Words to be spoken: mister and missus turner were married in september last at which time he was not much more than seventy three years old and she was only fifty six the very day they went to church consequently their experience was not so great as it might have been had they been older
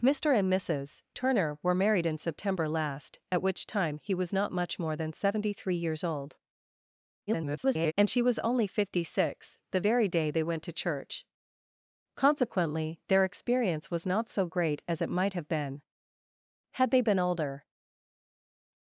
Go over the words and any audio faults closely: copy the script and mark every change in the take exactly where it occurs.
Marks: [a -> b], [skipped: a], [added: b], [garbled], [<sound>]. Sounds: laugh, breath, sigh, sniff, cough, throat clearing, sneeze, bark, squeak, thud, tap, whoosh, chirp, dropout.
mister and missus turner were married in september last at which time he was not much more than seventy three years old [garbled] and she was only fifty six the very day they went to church consequently their experience was not so great as it might have been had they been older